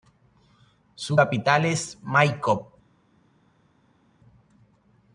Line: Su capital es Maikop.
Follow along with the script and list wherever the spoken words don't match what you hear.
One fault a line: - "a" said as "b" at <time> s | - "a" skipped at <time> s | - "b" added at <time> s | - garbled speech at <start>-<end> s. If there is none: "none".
none